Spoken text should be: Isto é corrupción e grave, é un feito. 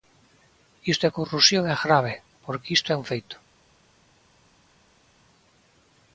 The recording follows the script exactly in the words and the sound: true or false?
false